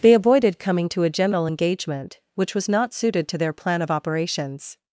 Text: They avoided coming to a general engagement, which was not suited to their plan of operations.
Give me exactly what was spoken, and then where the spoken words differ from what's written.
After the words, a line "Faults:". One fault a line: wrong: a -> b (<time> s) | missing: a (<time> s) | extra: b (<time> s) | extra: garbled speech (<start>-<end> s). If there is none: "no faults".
They avoided coming to a general engagement, which was not suited to their plan of operations.
Faults:
no faults